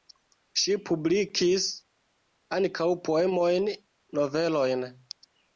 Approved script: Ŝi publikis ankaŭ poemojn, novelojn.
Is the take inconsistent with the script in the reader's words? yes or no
no